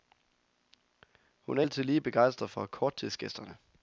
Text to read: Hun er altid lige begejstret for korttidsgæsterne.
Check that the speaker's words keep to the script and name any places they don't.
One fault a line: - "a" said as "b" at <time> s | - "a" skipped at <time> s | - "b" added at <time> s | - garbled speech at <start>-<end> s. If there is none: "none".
none